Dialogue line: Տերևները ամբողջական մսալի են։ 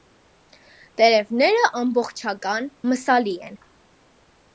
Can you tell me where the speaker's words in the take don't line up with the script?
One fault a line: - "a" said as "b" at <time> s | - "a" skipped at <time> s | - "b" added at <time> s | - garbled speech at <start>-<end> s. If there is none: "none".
none